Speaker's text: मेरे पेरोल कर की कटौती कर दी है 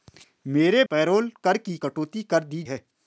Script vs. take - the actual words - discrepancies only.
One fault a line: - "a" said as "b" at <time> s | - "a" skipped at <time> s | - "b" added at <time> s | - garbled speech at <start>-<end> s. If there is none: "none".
none